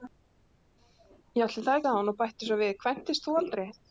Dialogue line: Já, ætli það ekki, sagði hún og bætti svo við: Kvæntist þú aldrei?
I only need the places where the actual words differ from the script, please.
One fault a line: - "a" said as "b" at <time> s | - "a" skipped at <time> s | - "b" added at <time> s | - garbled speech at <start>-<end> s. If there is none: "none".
- "ekki" skipped at 1.8 s